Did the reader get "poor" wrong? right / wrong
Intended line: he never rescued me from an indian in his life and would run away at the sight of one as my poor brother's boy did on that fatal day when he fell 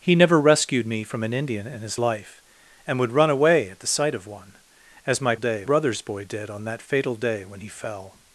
wrong